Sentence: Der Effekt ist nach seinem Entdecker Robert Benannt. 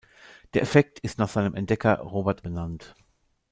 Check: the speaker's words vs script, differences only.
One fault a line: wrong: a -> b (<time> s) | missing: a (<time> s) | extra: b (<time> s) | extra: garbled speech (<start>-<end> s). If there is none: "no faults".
no faults